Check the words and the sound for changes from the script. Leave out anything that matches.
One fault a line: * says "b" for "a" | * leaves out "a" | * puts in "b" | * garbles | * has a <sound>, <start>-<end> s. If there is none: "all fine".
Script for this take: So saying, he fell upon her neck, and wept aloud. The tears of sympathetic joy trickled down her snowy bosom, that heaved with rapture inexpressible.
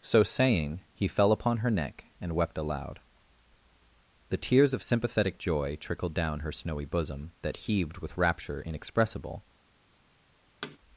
* has a thud, 10.6-10.8 s